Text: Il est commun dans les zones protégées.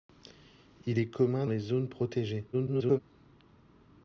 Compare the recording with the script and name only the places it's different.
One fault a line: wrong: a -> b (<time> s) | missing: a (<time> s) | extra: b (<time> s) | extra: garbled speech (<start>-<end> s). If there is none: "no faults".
missing: dans (1.5 s)
extra: garbled speech (2.5-3.0 s)